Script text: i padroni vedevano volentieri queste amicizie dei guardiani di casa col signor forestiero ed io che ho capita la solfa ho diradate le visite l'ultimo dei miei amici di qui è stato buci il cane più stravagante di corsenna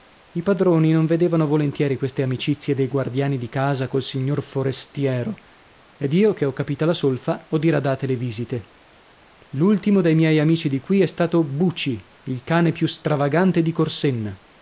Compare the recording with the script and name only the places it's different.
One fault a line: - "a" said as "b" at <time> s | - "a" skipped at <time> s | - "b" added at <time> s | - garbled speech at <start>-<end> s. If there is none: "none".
- "non" added at 0.9 s